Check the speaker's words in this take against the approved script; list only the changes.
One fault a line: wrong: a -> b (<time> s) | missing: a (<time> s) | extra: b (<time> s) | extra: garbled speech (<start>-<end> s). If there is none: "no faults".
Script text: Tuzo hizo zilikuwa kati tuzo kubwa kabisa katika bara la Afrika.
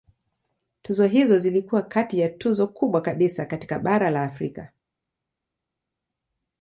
extra: ya (2.2 s)